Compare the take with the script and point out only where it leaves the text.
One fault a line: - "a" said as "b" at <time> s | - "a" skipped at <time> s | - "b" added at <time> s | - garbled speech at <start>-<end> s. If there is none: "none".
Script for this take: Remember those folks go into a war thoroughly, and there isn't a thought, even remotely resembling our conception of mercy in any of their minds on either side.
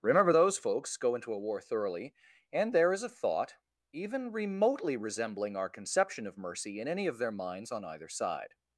- "isn't" said as "is" at 2.9 s